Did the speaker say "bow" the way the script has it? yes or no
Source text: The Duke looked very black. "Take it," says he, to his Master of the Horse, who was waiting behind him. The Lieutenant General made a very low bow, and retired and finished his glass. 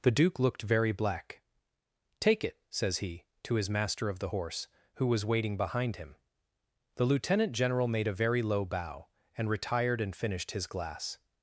yes